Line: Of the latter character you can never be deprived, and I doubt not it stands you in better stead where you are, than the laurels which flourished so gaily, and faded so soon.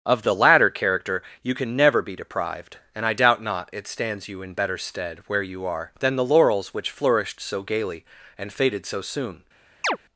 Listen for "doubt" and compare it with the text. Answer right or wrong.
right